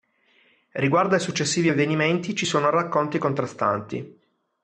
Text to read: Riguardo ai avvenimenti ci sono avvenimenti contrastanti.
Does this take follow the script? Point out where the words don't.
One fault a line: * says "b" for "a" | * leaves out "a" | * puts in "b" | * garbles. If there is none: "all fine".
* puts in "successivi"
* says "racconti" for "avvenimenti"